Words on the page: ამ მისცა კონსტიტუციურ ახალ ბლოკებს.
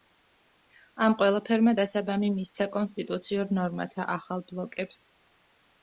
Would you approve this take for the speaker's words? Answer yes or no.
no